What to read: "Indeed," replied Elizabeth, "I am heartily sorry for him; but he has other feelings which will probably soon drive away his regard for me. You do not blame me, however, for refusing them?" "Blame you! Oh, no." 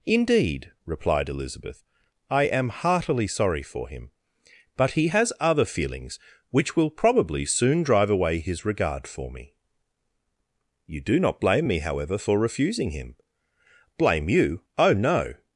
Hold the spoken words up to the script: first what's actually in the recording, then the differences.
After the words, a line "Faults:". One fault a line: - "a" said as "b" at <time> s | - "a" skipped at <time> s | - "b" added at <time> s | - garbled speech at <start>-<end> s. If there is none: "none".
"Indeed," replied Elizabeth, "I am heartily sorry for him; but he has other feelings which will probably soon drive away his regard for me. You do not blame me, however, for refusing him?" "Blame you! Oh, no."
Faults:
- "them" said as "him" at 12.9 s